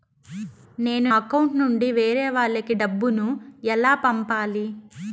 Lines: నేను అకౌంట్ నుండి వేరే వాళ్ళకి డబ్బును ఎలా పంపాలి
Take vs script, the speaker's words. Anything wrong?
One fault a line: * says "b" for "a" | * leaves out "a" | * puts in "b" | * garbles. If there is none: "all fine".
all fine